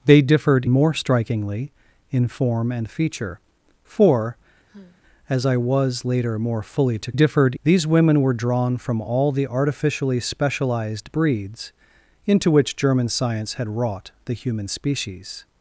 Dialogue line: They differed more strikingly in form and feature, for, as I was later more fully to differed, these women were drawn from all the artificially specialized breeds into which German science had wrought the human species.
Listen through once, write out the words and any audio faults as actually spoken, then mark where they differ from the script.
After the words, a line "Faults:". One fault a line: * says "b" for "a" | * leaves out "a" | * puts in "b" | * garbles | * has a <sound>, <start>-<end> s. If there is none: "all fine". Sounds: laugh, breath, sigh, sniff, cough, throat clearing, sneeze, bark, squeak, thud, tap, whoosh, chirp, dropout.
They differed more strikingly in form and feature, for, as I was later more fully to differed, these women were drawn from all the artificially specialized breeds into which German science had wrought the human species.
Faults:
* has a sigh, 4.7-5.0 s